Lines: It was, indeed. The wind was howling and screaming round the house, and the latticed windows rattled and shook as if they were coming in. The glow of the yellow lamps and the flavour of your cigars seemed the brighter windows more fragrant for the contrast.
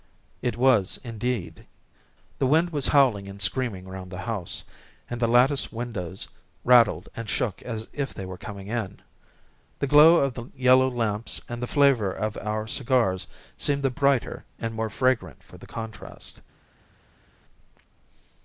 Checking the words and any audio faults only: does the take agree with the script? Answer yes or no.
no